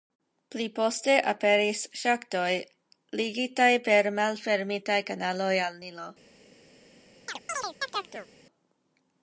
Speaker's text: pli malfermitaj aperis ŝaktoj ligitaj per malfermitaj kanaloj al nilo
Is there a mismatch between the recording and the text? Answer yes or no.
yes